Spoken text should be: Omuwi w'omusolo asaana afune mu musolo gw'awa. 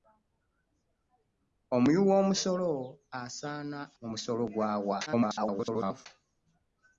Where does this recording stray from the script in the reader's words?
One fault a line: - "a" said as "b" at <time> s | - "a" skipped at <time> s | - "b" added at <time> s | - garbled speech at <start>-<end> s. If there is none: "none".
- "afune" skipped at 3.8 s
- garbled speech at 5.1-6.1 s